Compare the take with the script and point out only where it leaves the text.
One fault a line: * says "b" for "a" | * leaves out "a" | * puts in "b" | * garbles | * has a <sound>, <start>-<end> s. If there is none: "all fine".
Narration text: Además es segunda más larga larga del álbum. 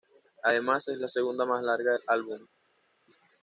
* puts in "la"
* leaves out "larga"